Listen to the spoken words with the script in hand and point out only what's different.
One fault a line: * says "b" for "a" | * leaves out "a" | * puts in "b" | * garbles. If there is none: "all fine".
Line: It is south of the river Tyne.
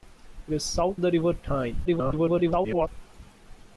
* leaves out "of"
* garbles